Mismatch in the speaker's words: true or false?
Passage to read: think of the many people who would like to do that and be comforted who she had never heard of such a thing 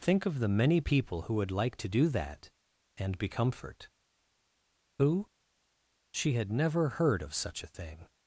true